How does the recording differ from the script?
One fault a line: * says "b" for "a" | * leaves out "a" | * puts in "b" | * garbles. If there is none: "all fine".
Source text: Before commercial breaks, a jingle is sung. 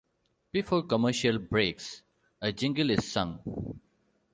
all fine